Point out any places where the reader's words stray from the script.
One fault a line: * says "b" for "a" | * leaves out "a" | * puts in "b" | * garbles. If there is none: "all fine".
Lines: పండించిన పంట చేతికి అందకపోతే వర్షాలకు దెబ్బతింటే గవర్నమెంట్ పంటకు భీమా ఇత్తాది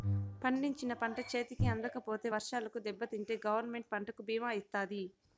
all fine